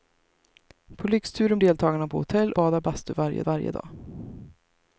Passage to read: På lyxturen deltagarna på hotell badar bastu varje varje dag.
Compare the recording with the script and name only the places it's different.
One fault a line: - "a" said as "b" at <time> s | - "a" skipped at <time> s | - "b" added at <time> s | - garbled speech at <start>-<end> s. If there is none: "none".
none